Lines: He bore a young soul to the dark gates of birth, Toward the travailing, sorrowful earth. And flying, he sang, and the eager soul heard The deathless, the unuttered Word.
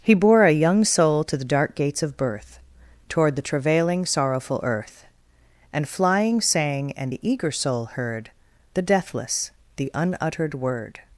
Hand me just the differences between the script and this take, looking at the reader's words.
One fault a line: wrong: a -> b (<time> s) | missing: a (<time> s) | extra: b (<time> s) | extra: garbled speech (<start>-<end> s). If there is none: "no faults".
missing: he (6.4 s)